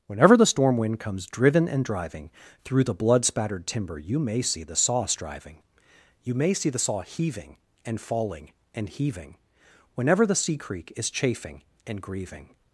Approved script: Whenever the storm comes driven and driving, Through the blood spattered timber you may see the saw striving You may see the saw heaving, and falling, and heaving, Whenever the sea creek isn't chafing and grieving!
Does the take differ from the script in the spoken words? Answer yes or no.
yes